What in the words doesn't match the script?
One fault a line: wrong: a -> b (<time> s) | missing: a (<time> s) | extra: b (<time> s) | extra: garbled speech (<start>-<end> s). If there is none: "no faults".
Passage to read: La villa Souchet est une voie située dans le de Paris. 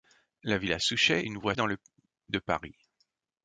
missing: est (1.2 s)
missing: située (1.5 s)